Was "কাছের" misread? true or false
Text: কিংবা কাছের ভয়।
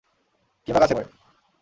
false